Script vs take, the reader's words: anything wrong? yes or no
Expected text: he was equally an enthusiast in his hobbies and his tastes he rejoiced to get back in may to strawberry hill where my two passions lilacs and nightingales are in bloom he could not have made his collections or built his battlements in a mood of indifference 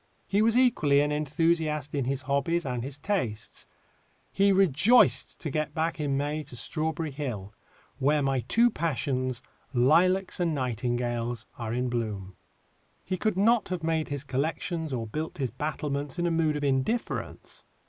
no